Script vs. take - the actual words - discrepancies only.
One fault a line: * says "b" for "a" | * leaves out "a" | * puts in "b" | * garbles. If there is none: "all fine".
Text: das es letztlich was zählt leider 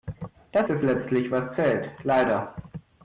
all fine